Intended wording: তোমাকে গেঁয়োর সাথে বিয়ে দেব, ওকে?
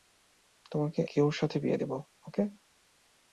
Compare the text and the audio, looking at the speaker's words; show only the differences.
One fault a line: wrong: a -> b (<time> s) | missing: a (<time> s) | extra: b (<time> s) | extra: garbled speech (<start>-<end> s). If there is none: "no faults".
no faults